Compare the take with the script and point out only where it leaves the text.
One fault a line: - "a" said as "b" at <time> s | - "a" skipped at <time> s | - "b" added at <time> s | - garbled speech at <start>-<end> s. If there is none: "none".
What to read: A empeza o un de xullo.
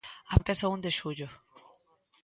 none